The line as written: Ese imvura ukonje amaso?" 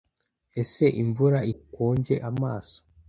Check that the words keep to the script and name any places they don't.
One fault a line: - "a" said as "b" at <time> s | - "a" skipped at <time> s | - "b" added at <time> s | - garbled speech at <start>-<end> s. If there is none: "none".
none